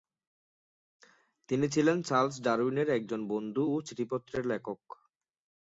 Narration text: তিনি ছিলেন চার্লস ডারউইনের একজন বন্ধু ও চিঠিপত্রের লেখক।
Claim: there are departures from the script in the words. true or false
false